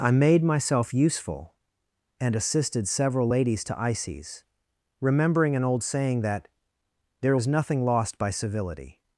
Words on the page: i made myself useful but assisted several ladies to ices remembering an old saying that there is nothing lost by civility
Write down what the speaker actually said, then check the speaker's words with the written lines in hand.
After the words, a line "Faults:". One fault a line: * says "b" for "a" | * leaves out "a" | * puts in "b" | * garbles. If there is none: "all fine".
i made myself useful and assisted several ladies to ices remembering an old saying that there is nothing lost by civility
Faults:
* says "and" for "but"